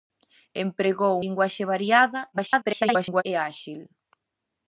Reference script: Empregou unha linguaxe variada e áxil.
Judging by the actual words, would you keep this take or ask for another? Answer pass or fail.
fail